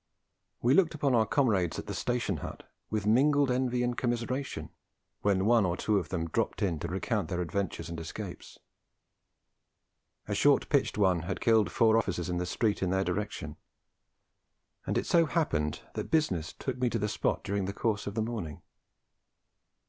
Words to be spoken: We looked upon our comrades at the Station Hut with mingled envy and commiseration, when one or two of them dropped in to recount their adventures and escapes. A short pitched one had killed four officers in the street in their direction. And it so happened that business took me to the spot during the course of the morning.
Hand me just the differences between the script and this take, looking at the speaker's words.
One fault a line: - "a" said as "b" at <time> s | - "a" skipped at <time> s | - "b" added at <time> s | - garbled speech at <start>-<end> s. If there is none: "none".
none